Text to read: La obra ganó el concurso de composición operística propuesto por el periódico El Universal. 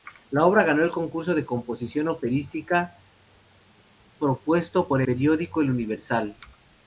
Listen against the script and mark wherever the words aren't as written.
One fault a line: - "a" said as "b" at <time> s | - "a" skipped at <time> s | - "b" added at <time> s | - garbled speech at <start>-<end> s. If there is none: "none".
- "el" skipped at 5.0 s